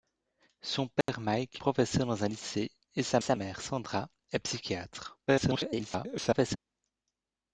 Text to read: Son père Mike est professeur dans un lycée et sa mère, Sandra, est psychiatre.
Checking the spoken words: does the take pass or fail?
fail